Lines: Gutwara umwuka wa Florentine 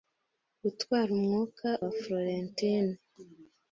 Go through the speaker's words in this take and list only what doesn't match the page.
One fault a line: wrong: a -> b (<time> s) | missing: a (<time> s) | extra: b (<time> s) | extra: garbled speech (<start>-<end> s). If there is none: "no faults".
no faults